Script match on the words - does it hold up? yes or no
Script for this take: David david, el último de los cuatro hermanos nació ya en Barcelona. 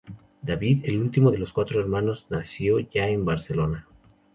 no